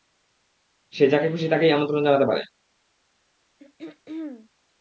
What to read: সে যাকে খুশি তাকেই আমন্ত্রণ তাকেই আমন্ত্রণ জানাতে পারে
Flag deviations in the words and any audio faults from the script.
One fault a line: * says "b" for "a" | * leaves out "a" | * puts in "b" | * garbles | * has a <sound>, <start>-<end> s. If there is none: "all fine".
* leaves out "তাকেই আমন্ত্রণ"
* has a throat clearing, 3.6-4.5 s